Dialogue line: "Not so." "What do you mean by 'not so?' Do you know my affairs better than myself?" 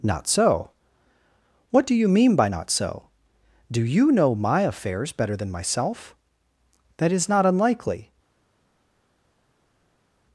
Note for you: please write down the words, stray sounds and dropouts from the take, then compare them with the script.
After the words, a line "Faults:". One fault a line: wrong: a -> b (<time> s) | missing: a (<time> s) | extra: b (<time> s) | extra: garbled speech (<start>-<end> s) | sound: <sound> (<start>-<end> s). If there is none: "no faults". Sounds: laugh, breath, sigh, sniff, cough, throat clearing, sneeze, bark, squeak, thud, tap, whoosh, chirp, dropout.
"Not so." "What do you mean by 'not so?' Do you know my affairs better than myself?" "That is not unlikely
Faults:
extra: That is not unlikely (6.9 s)